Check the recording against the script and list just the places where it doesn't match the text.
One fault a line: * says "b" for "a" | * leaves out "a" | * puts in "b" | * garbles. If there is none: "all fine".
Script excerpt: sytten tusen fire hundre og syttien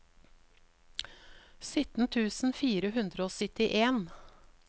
all fine